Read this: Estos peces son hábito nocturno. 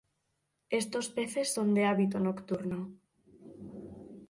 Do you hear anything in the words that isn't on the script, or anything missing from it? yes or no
yes